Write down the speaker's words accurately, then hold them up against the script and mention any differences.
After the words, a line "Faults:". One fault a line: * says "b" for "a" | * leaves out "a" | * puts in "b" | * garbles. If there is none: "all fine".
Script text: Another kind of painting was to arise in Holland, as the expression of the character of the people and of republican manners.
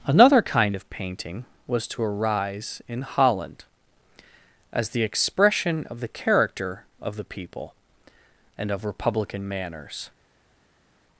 Another kind of painting was to arise in Holland, as the expression of the character of the people and of republican manners.
Faults:
all fine